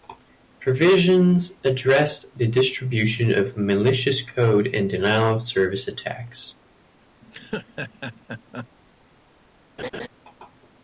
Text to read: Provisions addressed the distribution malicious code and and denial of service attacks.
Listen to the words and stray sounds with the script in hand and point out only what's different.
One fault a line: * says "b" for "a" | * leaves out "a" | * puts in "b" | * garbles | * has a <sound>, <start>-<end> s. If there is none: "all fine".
* puts in "of"
* leaves out "and"
* has a laugh, 7.2-8.7 s
* has a laugh, 9.8-10.1 s